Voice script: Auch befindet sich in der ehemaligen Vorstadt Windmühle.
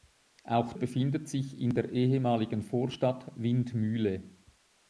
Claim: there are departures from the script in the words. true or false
false